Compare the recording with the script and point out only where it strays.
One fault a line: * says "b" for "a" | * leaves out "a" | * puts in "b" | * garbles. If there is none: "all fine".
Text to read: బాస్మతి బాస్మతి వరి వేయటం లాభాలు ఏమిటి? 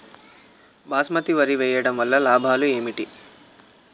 * leaves out "బాస్మతి"
* puts in "వల్ల"